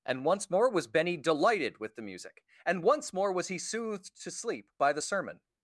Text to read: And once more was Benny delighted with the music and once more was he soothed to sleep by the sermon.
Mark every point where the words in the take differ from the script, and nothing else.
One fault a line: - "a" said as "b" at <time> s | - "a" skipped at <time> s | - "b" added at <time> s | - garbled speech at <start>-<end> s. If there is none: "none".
none